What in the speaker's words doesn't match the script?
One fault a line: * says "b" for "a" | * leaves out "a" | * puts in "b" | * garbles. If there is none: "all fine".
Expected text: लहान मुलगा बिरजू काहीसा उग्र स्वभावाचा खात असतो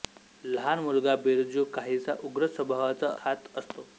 all fine